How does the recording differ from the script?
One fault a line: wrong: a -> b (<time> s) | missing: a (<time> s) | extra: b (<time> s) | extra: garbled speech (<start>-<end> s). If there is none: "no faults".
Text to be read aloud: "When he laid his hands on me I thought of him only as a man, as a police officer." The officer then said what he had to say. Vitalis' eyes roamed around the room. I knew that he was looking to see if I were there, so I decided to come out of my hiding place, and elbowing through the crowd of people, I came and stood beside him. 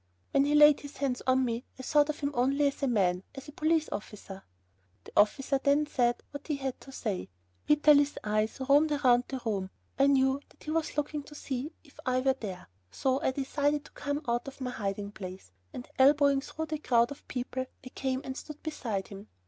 no faults